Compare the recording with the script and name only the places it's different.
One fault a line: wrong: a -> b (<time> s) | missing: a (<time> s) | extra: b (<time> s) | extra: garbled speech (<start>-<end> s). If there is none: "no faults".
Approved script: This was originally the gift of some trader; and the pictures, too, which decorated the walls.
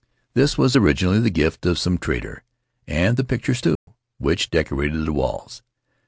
no faults